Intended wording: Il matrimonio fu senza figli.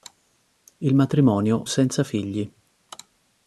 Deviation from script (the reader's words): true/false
true